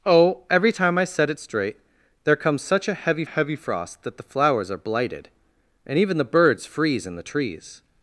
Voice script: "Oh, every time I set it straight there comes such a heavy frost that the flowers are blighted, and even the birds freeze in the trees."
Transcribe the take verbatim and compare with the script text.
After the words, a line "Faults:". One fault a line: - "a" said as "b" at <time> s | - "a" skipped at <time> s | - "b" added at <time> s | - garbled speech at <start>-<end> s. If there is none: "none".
"Oh, every time I set it straight there comes such a heavy heavy frost that the flowers are blighted, and even the birds freeze in the trees."
Faults:
- "heavy" added at 3.2 s